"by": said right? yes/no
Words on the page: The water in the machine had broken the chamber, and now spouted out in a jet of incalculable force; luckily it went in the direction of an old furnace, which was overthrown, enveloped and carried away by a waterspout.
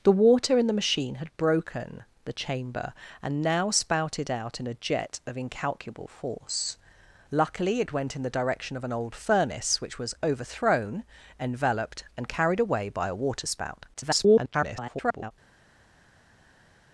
yes